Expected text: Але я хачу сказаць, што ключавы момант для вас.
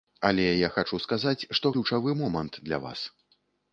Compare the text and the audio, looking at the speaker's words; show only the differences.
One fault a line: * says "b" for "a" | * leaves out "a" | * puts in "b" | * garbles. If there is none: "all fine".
all fine